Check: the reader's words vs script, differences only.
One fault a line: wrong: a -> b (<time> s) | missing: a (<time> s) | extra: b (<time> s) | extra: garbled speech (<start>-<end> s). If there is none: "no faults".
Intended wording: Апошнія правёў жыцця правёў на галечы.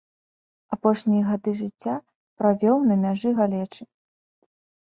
wrong: правёў -> гады (1.3 s)
extra: мяжы (3.0 s)